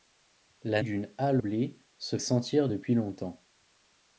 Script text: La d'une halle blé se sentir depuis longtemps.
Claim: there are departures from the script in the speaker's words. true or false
false